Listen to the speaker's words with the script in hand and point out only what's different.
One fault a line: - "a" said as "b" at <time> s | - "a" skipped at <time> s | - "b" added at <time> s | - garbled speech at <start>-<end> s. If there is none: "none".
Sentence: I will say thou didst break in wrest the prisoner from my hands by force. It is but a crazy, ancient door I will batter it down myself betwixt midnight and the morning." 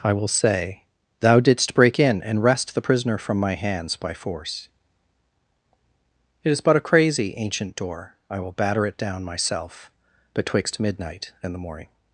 - "and" added at 2.2 s